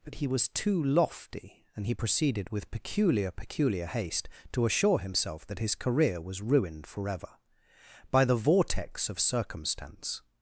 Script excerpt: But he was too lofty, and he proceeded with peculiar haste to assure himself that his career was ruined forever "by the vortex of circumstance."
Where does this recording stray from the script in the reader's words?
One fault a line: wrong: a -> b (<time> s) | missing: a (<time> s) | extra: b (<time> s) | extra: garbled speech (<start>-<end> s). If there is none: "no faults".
extra: peculiar (3.3 s)